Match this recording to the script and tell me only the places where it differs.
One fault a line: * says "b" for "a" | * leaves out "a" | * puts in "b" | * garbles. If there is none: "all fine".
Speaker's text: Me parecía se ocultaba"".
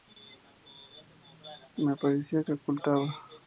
all fine